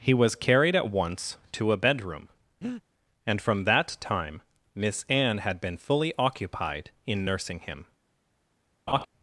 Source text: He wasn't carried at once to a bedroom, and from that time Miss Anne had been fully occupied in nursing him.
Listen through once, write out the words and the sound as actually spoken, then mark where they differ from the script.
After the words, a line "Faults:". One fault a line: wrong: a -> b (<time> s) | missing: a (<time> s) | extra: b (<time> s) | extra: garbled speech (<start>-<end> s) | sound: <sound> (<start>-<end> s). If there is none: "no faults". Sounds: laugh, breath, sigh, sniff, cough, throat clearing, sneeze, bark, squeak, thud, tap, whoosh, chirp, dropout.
He was carried at once to a bedroom, and from that time Miss Anne had been fully occupied in nursing him.
Faults:
wrong: wasn't -> was (0.1 s)
sound: breath (2.6-2.8 s)
sound: laugh (8.9-9.1 s)